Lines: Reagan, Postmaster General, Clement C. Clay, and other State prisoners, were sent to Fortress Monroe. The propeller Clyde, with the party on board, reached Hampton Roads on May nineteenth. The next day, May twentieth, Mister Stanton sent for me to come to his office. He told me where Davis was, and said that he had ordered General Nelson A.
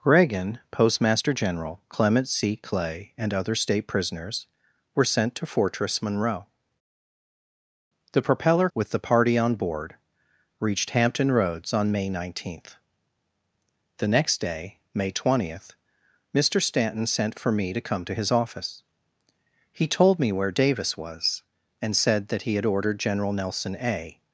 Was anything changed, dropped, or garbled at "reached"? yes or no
no